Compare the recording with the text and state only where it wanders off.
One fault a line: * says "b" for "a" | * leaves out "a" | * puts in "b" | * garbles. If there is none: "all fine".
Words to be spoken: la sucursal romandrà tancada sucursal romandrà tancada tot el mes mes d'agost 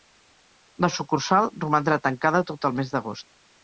* leaves out "sucursal romandrà tancada"
* leaves out "mes"